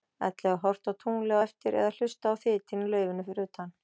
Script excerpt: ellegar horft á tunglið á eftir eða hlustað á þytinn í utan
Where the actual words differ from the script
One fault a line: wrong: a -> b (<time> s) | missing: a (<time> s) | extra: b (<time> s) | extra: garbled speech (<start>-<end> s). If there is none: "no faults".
extra: laufinu fyrir (2.9 s)